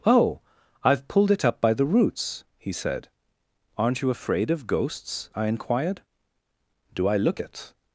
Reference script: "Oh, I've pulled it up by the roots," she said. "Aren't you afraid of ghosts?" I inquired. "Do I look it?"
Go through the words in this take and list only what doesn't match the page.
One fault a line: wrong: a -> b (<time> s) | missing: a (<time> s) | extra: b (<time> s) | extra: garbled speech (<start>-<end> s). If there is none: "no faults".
wrong: she -> he (2.6 s)